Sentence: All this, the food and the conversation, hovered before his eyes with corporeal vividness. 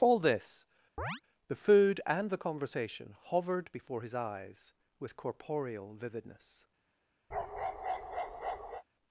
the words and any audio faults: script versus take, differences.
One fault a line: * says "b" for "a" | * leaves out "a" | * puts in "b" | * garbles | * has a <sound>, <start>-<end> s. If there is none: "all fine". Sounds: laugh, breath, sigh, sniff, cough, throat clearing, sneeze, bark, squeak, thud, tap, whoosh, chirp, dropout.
* has a chirp, 1.0-1.2 s
* has a bark, 7.3-8.8 s